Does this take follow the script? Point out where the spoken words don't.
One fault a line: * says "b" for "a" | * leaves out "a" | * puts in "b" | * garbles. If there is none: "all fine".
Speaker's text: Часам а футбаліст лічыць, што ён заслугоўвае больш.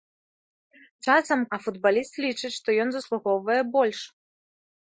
all fine